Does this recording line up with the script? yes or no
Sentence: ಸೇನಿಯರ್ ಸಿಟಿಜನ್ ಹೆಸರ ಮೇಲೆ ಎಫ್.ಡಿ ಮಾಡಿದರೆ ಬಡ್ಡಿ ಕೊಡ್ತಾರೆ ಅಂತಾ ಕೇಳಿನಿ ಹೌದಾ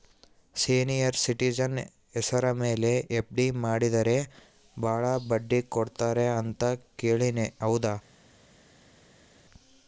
no